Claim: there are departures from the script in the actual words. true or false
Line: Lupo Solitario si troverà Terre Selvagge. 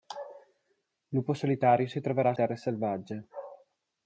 false